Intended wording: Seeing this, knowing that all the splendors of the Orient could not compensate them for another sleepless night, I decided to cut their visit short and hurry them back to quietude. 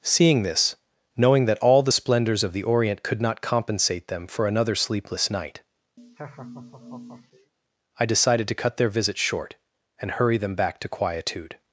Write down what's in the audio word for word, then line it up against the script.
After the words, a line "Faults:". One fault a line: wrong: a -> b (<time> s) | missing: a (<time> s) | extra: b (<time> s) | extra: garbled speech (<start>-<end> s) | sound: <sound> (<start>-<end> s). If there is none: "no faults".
Seeing this, knowing that all the splendors of the Orient could not compensate them for another sleepless night, I decided to cut their visit short and hurry them back to quietude.
Faults:
sound: laugh (6.0-7.5 s)